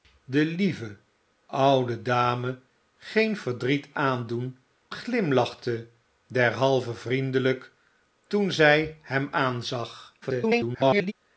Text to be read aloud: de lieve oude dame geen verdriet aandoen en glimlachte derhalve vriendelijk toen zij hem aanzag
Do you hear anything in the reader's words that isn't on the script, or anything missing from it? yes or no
yes